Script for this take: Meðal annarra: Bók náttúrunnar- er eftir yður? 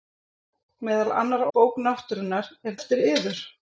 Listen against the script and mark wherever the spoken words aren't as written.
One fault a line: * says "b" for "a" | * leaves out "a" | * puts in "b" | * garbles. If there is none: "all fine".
all fine